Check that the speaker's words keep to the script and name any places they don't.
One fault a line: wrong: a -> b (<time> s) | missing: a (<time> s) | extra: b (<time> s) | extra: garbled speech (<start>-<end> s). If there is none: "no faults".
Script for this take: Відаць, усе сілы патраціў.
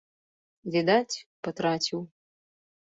missing: усе сілы (1.1 s)